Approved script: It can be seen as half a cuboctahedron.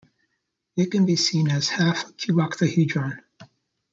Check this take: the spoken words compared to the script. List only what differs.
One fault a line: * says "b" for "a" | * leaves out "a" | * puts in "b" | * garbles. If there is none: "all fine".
all fine